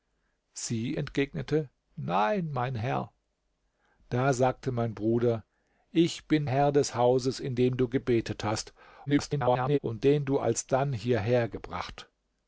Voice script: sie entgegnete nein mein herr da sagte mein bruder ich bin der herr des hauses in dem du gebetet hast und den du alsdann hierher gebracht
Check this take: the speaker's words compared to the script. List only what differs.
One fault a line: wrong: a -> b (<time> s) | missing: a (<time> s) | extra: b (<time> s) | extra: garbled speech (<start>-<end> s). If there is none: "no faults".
missing: der (6.5 s)
extra: garbled speech (9.1-9.8 s)